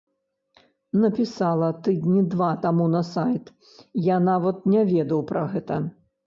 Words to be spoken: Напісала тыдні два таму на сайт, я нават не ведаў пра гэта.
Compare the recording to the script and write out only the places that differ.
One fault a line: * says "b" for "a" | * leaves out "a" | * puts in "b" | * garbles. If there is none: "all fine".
all fine